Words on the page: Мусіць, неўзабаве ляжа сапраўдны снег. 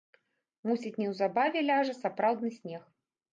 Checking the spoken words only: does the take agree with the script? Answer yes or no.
yes